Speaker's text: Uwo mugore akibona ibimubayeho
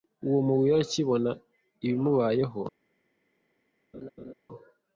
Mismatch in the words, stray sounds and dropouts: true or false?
true